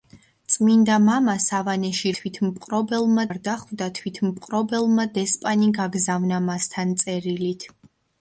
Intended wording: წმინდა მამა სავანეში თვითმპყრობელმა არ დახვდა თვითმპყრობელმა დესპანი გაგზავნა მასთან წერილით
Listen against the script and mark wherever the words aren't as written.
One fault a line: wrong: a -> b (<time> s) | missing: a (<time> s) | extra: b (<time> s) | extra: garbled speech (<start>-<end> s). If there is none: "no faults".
no faults